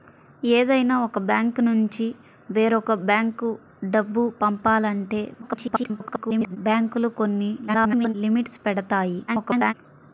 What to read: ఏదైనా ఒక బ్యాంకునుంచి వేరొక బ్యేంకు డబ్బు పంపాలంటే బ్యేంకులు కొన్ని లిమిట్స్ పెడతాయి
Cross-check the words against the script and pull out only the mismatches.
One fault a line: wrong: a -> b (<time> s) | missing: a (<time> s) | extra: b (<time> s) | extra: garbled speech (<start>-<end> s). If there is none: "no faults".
extra: garbled speech (5.4-6.6 s)
extra: garbled speech (7.7-8.1 s)
extra: garbled speech (9.3-9.7 s)